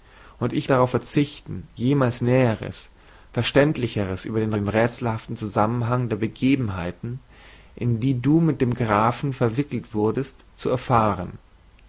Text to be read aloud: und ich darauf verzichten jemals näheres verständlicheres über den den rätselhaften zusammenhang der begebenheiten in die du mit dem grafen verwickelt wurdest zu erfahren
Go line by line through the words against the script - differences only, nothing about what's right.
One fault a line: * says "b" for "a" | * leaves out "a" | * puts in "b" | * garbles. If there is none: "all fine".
all fine